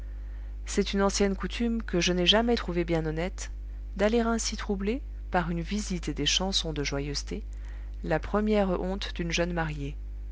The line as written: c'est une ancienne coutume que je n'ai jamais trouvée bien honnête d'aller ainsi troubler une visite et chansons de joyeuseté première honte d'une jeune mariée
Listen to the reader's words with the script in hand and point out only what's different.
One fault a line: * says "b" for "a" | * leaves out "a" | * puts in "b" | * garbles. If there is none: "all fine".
* puts in "par"
* puts in "des"
* puts in "la"